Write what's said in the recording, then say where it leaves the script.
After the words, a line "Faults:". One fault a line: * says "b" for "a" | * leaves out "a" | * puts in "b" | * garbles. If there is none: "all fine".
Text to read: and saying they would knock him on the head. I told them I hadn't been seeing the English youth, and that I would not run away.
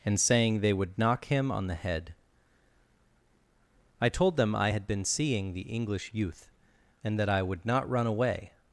and saying they would knock him on the head. I told them I had been seeing the English youth, and that I would not run away.
Faults:
* says "had" for "hadn't"